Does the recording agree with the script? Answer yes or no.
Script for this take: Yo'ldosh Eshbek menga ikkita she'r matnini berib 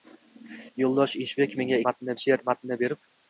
no